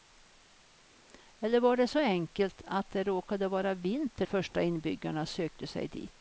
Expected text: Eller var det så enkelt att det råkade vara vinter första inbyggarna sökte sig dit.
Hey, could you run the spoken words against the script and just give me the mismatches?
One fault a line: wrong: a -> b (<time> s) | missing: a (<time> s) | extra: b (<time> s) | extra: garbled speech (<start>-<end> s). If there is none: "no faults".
no faults